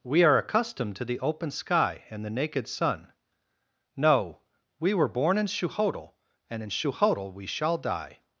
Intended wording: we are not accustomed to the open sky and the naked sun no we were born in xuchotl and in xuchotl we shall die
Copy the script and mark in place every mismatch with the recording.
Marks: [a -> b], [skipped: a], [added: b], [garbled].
we are [skipped: not] accustomed to the open sky and the naked sun no we were born in xuchotl and in xuchotl we shall die